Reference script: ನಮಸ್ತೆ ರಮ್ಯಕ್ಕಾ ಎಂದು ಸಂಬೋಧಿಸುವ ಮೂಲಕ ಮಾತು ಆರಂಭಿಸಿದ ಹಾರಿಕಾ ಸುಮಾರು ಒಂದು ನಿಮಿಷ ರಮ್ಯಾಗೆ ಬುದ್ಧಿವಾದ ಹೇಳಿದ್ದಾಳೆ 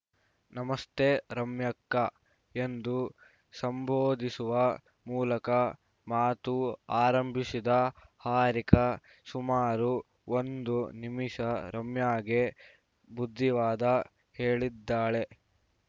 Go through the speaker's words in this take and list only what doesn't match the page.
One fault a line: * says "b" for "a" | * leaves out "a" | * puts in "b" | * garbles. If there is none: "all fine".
all fine